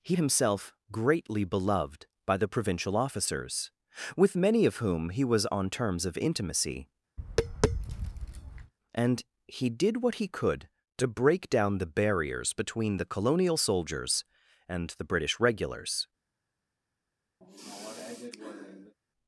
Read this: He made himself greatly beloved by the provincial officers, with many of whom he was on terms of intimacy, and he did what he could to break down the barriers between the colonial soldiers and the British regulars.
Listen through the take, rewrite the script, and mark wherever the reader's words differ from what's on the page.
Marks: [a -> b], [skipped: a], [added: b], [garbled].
He [skipped: made] himself greatly beloved by the provincial officers, with many of whom he was on terms of intimacy, and he did what he could to break down the barriers between the colonial soldiers and the British regulars.